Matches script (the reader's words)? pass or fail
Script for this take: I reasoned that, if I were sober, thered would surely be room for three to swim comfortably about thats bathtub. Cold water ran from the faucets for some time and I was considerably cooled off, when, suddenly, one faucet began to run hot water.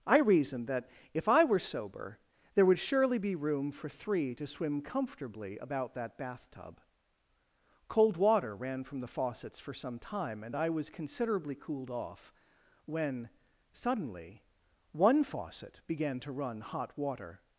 fail